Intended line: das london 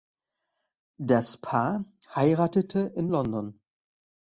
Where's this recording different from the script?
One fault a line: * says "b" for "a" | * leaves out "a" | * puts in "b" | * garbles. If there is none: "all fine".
* puts in "paar heiratete in"